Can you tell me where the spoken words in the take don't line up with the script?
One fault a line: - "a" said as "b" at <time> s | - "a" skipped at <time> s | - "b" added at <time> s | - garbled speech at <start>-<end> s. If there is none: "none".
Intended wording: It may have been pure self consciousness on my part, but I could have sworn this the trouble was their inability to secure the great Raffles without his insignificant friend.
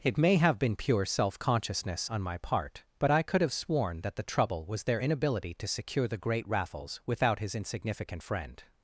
- "this" said as "that" at 4.0 s